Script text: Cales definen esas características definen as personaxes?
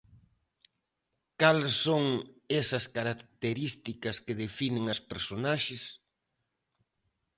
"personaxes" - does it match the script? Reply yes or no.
yes